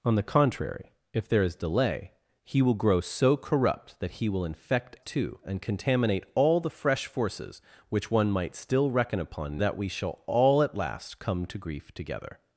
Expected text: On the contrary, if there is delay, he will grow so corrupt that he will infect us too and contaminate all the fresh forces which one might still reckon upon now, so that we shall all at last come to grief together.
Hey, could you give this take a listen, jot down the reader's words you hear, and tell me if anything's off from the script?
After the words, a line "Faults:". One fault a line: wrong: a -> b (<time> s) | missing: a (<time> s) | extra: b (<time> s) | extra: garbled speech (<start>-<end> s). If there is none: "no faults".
On the contrary, if there is delay, he will grow so corrupt that he will infect too and contaminate all the fresh forces which one might still reckon upon that we shall all at last come to grief together.
Faults:
missing: us (5.0 s)
missing: now so (9.6 s)